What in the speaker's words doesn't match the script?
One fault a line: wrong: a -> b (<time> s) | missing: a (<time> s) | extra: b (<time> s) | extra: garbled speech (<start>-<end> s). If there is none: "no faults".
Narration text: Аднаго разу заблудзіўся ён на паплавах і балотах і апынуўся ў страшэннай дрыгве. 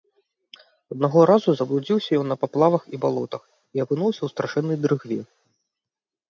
no faults